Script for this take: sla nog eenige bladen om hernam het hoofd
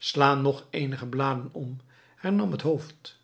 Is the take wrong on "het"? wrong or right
right